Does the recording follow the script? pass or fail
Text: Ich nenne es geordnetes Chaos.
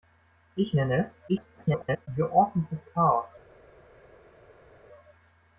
fail